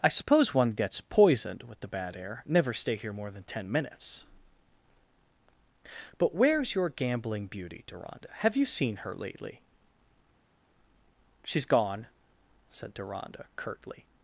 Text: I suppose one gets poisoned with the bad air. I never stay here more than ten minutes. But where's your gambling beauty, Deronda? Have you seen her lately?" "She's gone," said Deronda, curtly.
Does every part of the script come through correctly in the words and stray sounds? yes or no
no